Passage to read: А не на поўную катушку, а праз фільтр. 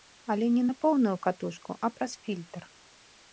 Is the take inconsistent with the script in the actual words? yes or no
yes